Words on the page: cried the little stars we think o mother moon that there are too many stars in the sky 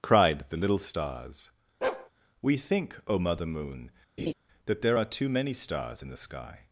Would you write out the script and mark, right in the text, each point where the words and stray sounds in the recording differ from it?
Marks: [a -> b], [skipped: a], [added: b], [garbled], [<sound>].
cried the little stars [bark] we think o mother moon [laugh] that there are too many stars in the sky